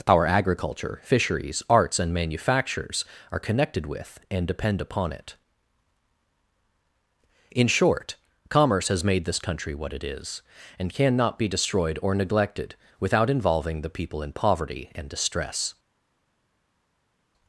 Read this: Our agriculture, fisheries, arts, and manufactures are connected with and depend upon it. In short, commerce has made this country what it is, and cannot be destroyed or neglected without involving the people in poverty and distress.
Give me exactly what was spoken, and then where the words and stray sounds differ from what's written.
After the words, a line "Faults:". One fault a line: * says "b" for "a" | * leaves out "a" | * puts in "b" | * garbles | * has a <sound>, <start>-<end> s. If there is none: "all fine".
Our agriculture, fisheries, arts, and manufactures are connected with and depend upon it. In short, commerce has made this country what it is, and cannot be destroyed or neglected without involving the people in poverty and distress.
Faults:
all fine